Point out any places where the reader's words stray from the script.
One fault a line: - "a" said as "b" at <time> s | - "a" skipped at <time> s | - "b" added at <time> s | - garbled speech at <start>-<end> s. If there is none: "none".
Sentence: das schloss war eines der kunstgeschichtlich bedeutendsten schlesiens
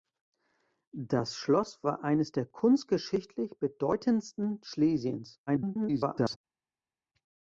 - garbled speech at 5.5-6.4 s